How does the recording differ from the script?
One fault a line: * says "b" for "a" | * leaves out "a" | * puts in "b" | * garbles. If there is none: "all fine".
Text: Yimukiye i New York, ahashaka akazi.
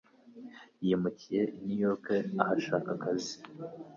all fine